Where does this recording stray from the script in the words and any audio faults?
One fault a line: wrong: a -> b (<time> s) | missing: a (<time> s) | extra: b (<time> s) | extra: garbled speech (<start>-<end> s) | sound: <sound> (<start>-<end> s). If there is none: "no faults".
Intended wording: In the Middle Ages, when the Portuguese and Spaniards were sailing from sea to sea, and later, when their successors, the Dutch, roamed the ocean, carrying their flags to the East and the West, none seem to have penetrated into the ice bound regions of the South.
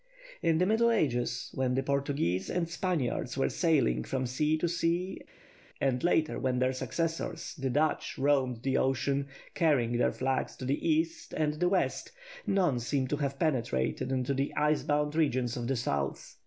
no faults